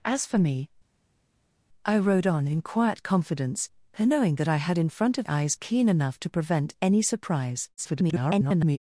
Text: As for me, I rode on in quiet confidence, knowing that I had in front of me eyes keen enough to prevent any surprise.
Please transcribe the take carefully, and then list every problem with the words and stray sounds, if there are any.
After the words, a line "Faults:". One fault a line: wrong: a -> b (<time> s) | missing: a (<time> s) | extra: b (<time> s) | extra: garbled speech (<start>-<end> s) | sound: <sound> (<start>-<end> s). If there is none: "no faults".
As for me, I rode on in quiet confidence, knowing that I had in front of eyes keen enough to prevent any surprise. [garbled]
Faults:
missing: me (5.3 s)
extra: garbled speech (7.8-8.8 s)